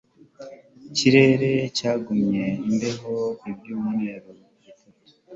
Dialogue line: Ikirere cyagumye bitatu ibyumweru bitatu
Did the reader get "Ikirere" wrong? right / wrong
right